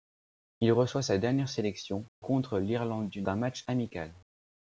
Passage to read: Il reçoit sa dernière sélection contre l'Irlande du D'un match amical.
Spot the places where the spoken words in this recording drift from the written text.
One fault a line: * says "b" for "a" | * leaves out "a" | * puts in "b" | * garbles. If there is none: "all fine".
all fine